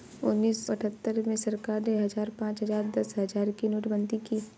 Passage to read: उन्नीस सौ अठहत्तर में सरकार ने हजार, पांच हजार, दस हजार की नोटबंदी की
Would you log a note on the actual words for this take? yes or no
yes